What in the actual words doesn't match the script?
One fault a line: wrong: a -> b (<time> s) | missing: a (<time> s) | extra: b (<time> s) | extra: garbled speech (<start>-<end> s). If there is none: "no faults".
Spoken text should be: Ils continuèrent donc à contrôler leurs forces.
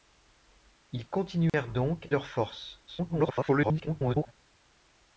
missing: à contrôler (2.1 s)
extra: garbled speech (2.9-4.3 s)